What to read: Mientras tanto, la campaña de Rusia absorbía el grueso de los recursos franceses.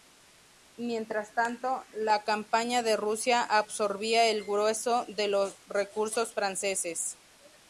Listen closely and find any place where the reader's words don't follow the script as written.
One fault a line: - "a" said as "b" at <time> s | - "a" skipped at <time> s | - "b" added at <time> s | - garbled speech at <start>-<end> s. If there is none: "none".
none